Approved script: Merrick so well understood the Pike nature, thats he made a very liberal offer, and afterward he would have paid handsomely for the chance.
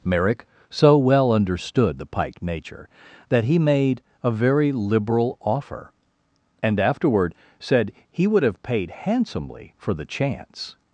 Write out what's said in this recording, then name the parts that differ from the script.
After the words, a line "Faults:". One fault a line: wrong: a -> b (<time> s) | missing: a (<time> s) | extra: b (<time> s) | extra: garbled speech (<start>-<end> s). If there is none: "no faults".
Merrick so well understood the Pike nature, that he made a very liberal offer, and afterward said he would have paid handsomely for the chance.
Faults:
wrong: thats -> that (3.3 s)
extra: said (7.6 s)